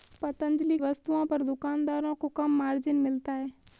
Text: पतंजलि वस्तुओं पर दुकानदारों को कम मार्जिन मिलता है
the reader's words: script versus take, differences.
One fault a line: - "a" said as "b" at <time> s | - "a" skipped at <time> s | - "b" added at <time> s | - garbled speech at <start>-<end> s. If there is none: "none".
none